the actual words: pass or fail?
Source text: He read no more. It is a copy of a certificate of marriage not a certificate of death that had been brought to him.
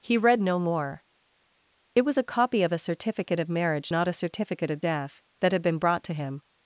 fail